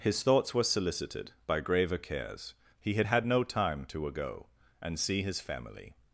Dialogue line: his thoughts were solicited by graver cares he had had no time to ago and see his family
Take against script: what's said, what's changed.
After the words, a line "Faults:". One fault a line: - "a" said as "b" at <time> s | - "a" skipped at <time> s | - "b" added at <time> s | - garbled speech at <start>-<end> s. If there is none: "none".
his thoughts were solicited by graver cares he had had no time to ago and see his family
Faults:
none